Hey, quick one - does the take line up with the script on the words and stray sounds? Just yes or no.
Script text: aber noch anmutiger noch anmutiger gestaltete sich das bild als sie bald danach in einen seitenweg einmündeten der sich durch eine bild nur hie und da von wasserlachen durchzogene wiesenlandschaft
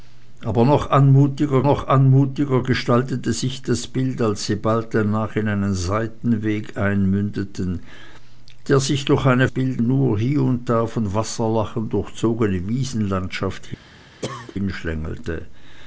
no